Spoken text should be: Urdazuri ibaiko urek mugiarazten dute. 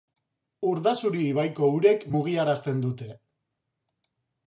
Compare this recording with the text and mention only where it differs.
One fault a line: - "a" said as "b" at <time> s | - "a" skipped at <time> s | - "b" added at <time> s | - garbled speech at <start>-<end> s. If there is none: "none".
none